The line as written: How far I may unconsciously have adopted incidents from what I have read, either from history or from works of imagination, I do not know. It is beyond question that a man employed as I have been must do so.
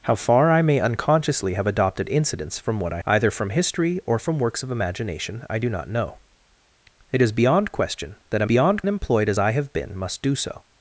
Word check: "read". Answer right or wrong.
wrong